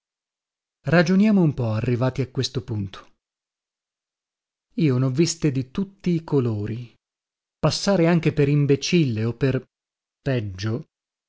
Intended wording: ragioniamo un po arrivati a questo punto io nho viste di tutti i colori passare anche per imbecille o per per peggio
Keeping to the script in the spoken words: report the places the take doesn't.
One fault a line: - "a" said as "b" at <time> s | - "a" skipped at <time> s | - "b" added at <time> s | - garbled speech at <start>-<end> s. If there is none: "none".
- "per" skipped at 9.6 s